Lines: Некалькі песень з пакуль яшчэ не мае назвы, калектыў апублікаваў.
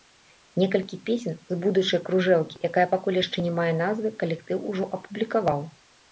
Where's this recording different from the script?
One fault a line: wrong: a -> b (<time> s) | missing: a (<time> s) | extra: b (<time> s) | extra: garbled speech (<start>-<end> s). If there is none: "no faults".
extra: будучай кружэлкі якая (1.6 s)
extra: ужо (4.7 s)